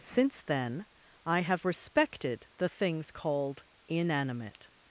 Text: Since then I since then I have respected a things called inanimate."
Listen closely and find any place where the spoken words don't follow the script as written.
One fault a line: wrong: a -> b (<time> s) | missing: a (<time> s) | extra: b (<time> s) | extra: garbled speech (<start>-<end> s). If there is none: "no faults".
missing: since then I (1.4 s)
wrong: a -> the (2.6 s)